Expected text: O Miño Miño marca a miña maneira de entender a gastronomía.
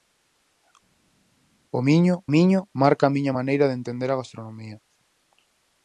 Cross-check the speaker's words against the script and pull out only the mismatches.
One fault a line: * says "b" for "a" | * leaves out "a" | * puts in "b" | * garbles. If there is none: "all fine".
all fine